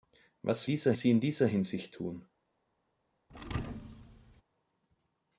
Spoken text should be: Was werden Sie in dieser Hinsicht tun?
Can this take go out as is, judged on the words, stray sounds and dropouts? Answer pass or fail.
fail